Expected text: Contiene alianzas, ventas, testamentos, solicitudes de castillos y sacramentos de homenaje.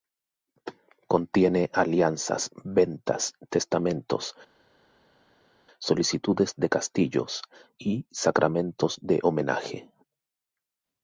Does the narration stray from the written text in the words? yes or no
no